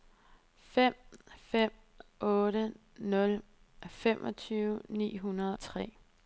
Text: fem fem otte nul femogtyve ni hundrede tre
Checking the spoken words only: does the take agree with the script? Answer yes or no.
yes